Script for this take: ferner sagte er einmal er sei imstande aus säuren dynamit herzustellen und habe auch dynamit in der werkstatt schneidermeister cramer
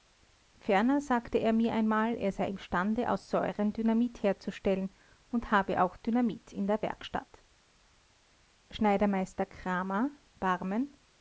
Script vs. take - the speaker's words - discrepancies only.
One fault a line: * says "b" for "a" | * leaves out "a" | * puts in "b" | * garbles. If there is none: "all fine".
* puts in "mir"